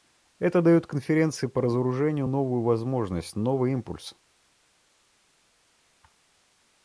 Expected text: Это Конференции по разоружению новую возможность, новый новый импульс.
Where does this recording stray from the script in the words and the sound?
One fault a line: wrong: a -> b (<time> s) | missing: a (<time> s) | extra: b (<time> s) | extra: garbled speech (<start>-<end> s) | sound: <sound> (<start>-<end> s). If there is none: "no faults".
extra: дает (0.6 s)
missing: новый (3.7 s)